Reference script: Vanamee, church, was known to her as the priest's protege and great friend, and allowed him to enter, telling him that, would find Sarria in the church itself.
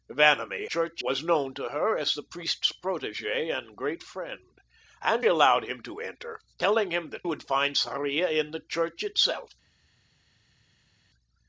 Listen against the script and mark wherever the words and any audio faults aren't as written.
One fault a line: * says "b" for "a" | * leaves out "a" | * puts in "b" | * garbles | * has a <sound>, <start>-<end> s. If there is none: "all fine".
all fine